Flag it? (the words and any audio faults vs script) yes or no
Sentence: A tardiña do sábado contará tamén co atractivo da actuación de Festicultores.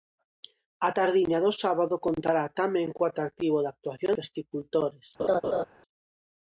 yes